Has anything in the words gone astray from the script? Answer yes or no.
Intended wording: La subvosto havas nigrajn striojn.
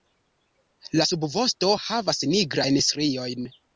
no